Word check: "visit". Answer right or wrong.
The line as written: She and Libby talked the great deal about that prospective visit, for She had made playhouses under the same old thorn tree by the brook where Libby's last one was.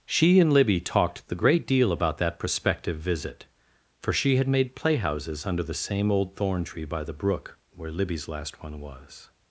right